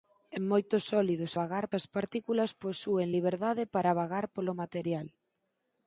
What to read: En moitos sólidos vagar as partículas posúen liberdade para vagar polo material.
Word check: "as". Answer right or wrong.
right